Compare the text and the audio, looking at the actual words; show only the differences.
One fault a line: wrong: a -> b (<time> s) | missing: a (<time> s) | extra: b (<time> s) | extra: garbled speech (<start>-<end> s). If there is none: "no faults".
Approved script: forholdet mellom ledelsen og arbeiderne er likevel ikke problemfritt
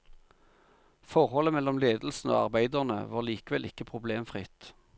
wrong: er -> var (3.1 s)